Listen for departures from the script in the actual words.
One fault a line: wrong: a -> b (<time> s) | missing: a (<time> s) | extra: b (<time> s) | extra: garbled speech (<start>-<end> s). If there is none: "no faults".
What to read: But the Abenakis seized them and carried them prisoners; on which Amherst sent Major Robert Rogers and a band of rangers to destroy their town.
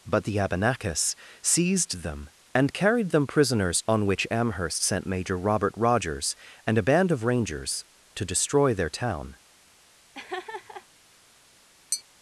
no faults